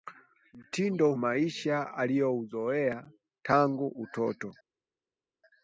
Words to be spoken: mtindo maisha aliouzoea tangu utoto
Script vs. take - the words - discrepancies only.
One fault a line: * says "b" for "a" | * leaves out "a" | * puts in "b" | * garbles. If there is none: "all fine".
all fine